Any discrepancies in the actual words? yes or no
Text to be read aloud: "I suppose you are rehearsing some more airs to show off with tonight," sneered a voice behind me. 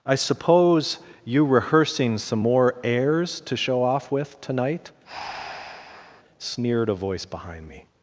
yes